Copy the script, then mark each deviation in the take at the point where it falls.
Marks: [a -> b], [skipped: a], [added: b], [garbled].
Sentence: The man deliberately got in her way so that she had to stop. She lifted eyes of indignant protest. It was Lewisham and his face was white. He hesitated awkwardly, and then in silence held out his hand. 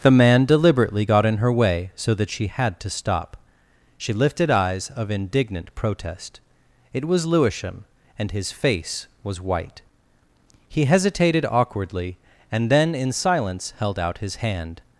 The man deliberately got in her way so that she had to stop. She lifted eyes of indignant protest. It was Lewisham and his face was white. He hesitated awkwardly, and then in silence held out his hand.